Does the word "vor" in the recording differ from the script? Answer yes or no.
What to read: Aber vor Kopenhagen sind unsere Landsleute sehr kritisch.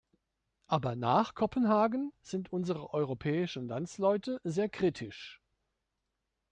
yes